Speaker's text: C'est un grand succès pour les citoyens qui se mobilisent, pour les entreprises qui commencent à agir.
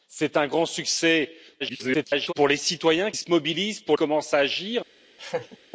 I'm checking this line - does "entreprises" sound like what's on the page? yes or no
no